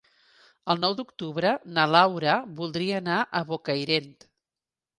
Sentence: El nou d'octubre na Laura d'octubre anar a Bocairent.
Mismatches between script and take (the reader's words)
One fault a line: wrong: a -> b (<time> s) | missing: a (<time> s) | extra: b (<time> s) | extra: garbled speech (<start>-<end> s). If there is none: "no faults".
wrong: d'octubre -> voldria (2.6 s)